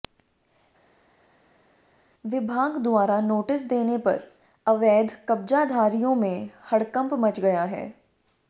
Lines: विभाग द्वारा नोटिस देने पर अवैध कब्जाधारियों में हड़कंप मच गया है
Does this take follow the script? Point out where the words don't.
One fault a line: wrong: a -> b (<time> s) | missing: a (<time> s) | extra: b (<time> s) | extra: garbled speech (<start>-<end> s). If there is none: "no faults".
no faults